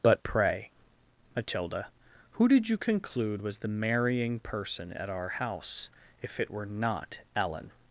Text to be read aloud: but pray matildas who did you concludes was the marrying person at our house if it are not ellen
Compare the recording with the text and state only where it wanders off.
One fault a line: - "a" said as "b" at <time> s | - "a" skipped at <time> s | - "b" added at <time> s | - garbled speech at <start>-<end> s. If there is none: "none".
- "matildas" said as "matilda" at 1.4 s
- "concludes" said as "conclude" at 2.8 s
- "are" said as "were" at 6.5 s